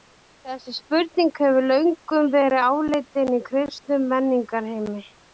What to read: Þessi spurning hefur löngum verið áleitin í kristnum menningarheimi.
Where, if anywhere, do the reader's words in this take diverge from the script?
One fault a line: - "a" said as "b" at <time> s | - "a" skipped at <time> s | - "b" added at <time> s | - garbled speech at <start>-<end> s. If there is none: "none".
none